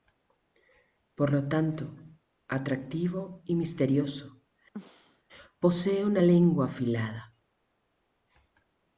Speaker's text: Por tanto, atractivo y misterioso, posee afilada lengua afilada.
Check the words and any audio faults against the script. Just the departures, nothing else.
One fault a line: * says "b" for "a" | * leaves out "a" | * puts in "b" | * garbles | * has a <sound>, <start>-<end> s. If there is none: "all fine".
* puts in "lo"
* has a throat clearing, 4.7-5.2 s
* says "una" for "afilada"